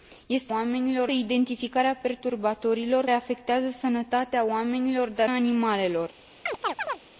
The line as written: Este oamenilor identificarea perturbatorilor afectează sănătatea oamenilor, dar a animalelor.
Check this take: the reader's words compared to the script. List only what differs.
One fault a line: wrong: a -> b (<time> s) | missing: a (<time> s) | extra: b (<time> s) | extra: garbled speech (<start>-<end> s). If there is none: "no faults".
no faults